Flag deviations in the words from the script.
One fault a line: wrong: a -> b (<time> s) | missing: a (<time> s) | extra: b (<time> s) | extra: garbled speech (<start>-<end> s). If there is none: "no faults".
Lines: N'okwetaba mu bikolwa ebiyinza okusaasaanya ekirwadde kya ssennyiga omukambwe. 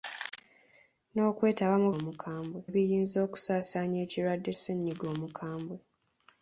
wrong: bikolwa -> omukambwe (2.0 s)
missing: kya (4.5 s)